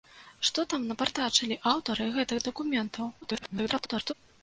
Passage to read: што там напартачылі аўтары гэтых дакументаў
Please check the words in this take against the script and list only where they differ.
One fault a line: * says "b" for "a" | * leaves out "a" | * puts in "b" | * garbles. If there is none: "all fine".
* garbles